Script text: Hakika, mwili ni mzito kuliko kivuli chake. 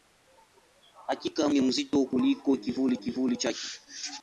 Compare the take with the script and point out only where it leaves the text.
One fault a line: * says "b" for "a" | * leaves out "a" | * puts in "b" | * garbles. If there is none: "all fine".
* leaves out "mwili"
* puts in "kivuli"